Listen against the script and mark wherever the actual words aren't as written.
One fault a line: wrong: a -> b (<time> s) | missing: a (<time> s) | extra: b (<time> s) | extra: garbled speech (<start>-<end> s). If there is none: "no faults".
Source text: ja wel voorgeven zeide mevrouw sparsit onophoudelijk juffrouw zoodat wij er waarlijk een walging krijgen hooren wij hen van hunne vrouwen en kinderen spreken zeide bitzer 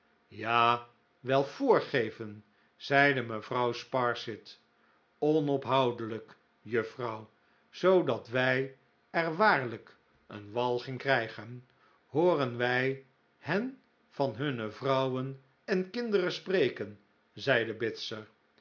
no faults